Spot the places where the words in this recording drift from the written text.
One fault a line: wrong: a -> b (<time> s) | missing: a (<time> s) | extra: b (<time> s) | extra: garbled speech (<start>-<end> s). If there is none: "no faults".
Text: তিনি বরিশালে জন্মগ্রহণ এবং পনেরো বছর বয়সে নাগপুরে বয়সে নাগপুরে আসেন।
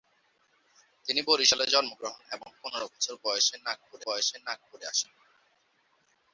no faults